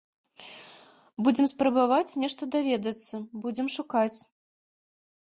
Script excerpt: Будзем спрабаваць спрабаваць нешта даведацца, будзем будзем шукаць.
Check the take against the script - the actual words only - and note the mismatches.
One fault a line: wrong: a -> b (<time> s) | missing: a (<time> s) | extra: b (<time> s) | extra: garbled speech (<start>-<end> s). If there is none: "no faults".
missing: спрабаваць (2.2 s)
missing: будзем (3.7 s)